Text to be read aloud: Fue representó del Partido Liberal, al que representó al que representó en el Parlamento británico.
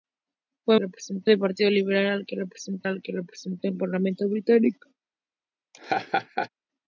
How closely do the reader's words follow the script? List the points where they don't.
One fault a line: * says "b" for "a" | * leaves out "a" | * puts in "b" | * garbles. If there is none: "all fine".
all fine